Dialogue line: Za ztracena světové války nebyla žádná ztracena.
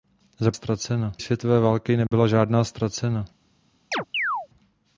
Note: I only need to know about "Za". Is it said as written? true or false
true